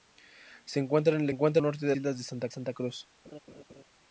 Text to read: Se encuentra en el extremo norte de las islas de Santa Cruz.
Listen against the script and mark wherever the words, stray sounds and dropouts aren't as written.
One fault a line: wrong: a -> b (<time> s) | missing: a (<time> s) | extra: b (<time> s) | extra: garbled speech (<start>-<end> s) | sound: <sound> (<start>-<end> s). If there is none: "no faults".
wrong: extremo -> encuentra (1.3 s)
missing: las (1.9 s)
extra: Santa (2.5 s)
sound: laugh (3.2-3.8 s)